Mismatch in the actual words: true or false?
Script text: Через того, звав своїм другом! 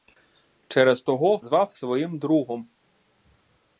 false